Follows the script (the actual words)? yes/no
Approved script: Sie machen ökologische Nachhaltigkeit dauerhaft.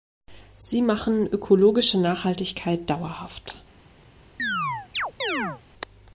yes